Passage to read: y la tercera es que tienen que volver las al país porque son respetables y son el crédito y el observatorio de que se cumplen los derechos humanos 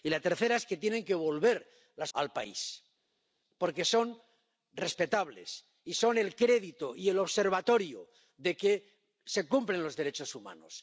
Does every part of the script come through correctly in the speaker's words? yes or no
yes